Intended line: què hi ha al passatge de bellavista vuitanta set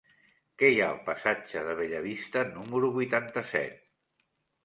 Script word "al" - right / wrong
right